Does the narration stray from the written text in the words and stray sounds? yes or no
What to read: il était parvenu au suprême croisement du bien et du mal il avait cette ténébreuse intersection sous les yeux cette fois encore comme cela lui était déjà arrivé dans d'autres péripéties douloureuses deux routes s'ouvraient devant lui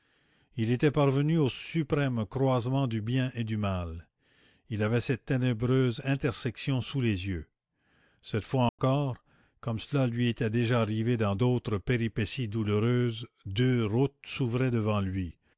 yes